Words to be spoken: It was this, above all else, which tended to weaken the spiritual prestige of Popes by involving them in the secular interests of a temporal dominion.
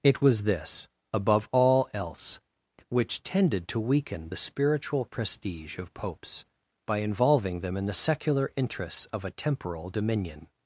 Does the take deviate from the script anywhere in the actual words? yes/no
no